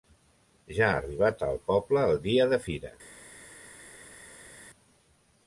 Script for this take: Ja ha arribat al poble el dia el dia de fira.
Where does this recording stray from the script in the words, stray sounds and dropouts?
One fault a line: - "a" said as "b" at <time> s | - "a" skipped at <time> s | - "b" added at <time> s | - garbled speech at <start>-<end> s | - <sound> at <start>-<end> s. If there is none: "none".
- "el dia" skipped at 2.5 s